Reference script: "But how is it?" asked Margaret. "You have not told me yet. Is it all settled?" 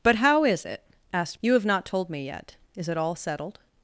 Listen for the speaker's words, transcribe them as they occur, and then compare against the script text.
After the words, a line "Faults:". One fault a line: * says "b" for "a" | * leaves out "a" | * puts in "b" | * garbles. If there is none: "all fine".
"But how is it?" asked. "You have not told me yet. Is it all settled?"
Faults:
* leaves out "Margaret"